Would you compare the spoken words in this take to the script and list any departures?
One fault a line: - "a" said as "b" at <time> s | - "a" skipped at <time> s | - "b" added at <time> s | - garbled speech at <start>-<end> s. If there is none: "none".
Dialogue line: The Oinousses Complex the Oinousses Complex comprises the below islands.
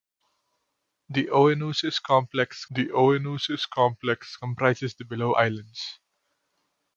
none